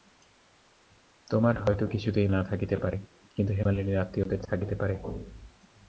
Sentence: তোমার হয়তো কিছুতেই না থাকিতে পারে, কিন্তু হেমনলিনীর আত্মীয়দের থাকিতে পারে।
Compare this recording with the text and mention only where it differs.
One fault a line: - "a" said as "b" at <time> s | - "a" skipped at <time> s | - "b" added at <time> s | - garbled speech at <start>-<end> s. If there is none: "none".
none